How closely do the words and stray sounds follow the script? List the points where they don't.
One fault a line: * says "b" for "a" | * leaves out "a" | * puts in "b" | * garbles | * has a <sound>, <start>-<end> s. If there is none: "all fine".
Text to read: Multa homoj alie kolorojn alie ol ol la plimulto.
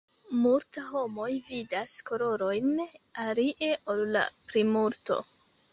* says "vidas" for "alie"
* leaves out "ol"